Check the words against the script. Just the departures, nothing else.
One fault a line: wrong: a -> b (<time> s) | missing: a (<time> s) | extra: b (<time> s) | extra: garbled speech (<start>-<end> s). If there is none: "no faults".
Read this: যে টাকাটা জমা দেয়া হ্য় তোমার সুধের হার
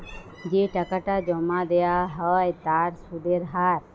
wrong: তোমার -> তার (2.6 s)